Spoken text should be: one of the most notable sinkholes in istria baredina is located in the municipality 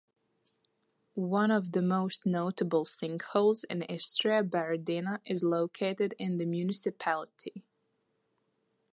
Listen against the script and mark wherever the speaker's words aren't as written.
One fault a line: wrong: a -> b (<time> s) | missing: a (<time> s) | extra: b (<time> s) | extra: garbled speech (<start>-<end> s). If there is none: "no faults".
no faults